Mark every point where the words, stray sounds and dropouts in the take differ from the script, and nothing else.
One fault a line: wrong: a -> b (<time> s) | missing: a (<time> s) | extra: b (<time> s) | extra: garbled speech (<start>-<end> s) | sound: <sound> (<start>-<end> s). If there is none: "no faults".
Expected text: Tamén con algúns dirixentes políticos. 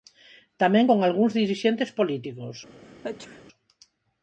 sound: sneeze (2.8-3.4 s)